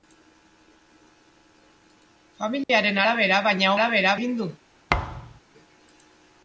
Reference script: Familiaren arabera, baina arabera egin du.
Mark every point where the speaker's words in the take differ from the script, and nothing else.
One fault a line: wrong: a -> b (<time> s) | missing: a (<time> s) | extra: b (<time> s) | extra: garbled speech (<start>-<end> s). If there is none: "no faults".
no faults